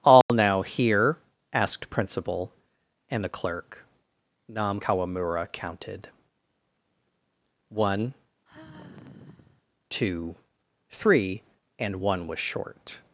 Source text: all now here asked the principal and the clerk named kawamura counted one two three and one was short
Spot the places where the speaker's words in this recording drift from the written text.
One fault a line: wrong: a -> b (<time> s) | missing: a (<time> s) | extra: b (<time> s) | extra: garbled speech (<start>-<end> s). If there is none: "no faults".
missing: the (1.9 s)
wrong: named -> nam (4.5 s)